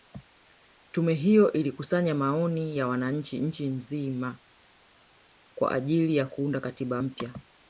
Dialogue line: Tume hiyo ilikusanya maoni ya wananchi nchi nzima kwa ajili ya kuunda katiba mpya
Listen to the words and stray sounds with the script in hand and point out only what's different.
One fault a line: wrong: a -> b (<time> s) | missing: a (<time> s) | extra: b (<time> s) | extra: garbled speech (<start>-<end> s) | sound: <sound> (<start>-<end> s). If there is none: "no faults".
no faults